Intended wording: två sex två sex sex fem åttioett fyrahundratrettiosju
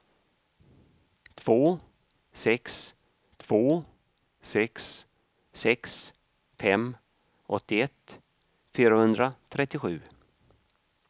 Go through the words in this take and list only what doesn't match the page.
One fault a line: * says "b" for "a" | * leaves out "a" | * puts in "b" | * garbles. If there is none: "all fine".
all fine